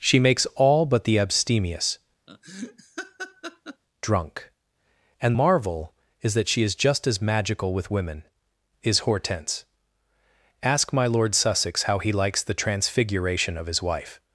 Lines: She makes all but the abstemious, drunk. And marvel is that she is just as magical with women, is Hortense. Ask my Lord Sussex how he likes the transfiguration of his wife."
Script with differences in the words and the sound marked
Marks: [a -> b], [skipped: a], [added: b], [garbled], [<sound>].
She makes all but the abstemious, [laugh] drunk. And marvel is that she is just as magical with women, is Hortense. Ask my Lord Sussex how he likes the transfiguration of his wife."